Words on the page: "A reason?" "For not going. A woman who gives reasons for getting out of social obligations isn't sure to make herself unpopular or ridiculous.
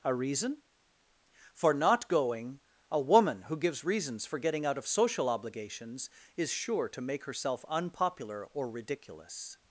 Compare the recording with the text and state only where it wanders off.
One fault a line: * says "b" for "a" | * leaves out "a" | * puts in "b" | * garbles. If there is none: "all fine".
* says "is" for "isn't"